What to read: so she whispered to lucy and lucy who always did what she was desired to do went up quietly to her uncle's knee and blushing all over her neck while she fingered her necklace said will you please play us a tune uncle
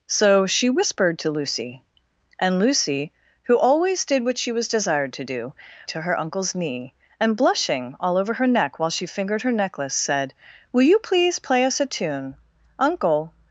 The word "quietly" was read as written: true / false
false